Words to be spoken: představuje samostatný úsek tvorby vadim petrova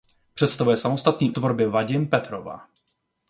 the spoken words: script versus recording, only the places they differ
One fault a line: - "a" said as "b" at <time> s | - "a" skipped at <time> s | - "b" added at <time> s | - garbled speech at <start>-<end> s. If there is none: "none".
- "úsek" skipped at 1.3 s